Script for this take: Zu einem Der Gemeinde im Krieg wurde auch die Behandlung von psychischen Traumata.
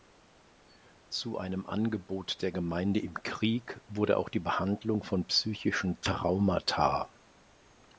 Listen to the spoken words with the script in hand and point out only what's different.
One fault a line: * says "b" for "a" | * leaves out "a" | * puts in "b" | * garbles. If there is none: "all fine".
* puts in "Angebot"